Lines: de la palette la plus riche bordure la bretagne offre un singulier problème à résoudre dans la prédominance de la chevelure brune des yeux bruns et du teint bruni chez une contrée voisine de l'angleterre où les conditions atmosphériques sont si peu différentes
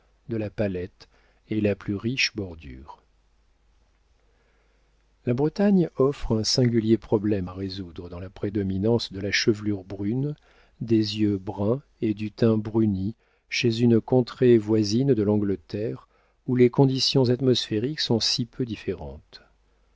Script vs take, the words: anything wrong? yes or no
yes